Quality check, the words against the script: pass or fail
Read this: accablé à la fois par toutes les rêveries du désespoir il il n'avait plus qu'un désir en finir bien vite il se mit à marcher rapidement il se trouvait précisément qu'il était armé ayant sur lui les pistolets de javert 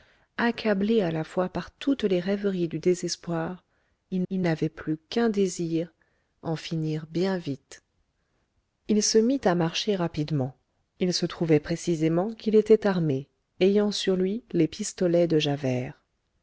pass